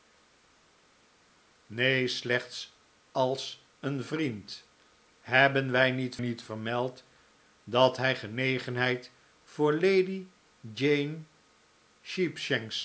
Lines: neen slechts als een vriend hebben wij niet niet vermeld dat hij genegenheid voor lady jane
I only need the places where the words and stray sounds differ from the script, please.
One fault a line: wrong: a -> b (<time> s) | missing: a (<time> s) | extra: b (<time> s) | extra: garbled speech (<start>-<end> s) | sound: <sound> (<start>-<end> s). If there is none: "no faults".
no faults